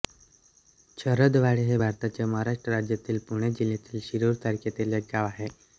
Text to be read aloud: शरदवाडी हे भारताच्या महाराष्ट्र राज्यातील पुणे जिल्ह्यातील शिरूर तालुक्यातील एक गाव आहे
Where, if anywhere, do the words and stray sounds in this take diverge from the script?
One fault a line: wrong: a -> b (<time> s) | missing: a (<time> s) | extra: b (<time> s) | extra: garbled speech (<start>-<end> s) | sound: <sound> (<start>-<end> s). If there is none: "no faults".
no faults